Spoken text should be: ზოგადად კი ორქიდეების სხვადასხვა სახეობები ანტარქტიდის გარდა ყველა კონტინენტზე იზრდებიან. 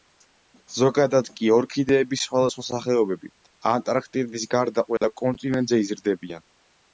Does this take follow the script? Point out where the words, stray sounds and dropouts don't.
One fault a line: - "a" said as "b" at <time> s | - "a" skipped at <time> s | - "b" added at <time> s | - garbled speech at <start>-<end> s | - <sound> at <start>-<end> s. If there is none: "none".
- dropout at 5.0-5.0 s